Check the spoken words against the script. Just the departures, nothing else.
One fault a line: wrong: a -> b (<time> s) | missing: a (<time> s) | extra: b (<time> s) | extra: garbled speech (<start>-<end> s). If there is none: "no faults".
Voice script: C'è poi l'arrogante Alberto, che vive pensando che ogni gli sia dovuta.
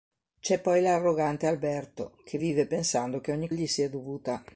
no faults